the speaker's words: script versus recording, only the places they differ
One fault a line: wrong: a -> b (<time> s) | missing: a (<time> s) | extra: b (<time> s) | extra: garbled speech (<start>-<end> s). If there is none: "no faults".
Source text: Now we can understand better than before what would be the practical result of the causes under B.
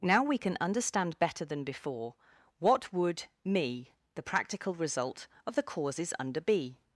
wrong: be -> me (3.5 s)